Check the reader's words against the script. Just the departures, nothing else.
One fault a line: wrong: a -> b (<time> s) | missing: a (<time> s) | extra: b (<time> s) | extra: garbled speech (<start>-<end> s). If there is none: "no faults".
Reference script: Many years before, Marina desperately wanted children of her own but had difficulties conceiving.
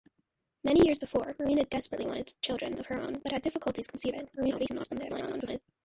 extra: garbled speech (4.4-5.6 s)